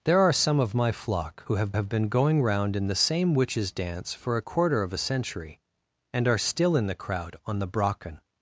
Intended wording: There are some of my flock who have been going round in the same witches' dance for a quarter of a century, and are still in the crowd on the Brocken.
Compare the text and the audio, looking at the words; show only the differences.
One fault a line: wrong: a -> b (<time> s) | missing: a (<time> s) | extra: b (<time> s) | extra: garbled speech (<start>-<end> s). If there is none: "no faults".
extra: have (1.7 s)